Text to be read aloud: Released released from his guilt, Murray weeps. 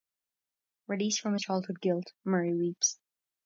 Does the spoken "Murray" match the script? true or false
true